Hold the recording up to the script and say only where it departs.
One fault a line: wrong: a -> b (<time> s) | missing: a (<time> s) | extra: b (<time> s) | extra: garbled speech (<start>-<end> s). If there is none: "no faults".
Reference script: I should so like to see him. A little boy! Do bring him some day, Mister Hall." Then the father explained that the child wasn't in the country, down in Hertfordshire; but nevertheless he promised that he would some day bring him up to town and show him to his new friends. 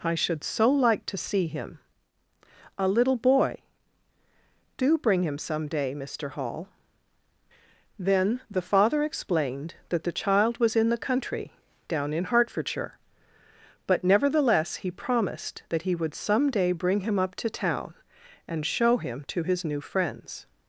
wrong: wasn't -> was (10.6 s)